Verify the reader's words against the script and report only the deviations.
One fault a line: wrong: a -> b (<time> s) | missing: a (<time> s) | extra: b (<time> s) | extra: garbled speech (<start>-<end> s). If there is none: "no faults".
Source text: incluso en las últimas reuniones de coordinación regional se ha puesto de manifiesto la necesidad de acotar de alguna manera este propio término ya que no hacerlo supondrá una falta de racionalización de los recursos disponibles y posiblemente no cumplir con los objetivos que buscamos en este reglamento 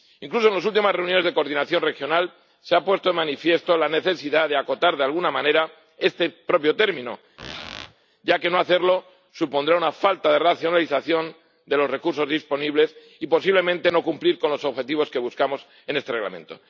no faults